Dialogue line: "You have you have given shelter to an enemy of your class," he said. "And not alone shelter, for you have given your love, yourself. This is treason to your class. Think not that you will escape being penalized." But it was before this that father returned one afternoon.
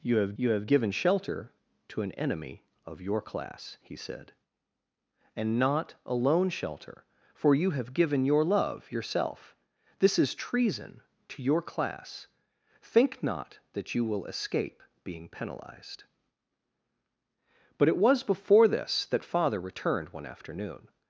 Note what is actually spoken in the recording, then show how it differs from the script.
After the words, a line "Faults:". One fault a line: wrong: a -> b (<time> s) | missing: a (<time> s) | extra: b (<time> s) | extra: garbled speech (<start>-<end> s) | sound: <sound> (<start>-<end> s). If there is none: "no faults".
"You have you have given shelter to an enemy of your class," he said. "And not alone shelter, for you have given your love, yourself. This is treason to your class. Think not that you will escape being penalized." But it was before this that father returned one afternoon.
Faults:
no faults